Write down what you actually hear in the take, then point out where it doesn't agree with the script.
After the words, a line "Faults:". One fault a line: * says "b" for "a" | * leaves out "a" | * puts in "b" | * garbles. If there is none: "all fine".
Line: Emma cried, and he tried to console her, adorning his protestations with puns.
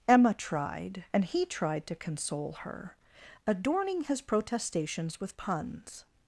Emma tried, and he tried to console her, adorning his protestations with puns.
Faults:
* says "tried" for "cried"